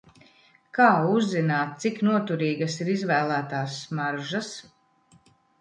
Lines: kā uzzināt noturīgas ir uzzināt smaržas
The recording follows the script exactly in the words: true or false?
false